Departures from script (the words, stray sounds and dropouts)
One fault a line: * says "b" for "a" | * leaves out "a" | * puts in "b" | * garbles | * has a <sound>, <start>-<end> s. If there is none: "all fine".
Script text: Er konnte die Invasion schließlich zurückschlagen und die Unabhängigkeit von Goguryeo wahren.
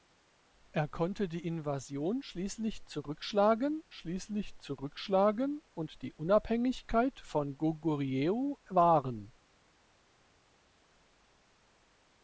* puts in "schließlich zurückschlagen"